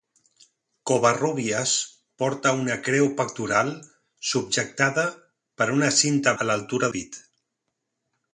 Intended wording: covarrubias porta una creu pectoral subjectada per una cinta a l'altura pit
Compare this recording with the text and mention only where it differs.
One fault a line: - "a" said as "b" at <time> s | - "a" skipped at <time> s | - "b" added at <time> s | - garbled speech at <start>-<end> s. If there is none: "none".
none